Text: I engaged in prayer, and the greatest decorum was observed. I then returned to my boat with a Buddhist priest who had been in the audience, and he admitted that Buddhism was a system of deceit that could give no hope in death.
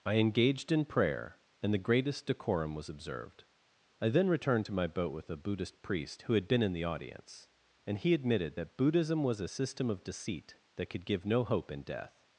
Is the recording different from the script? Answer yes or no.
no